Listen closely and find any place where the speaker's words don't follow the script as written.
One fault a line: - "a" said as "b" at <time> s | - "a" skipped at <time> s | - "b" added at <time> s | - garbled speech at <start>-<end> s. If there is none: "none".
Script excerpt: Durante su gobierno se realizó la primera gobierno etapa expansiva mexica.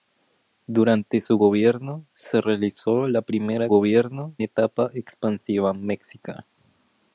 none